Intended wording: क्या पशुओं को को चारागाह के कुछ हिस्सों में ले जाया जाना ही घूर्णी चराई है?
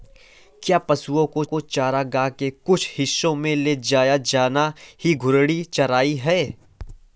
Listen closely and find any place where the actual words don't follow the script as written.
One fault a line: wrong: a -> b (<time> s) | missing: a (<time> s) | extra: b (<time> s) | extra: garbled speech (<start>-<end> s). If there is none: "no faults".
no faults